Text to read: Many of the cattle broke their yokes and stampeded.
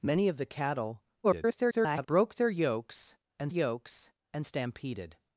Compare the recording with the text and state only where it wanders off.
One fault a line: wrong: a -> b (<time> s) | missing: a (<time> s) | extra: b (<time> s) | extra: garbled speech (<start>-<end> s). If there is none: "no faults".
extra: garbled speech (1.2-2.1 s)
extra: yokes and (3.5 s)